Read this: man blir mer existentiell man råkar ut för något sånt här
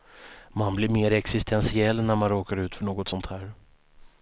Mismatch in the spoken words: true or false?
true